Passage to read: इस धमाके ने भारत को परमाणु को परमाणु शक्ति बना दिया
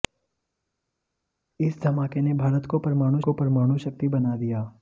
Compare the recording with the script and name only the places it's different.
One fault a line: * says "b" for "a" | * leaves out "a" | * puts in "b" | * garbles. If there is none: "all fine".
all fine